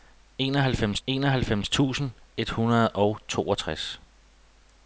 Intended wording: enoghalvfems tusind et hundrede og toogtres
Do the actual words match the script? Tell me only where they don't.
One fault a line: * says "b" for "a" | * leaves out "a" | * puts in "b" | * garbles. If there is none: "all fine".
* puts in "enoghalvfems"